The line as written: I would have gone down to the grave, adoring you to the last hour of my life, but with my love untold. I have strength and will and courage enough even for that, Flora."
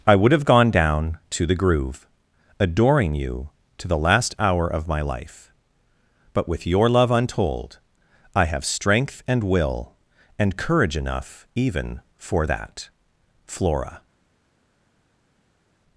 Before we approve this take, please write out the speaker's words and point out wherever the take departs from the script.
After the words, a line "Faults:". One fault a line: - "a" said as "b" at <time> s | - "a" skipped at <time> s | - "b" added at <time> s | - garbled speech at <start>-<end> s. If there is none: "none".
I would have gone down to the groove, adoring you to the last hour of my life, but with your love untold. I have strength and will and courage enough even for that, Flora."
Faults:
- "grave" said as "groove" at 1.5 s
- "my" said as "your" at 6.7 s